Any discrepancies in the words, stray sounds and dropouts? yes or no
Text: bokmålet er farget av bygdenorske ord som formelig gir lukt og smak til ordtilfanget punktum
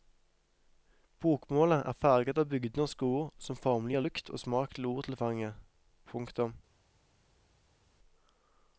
no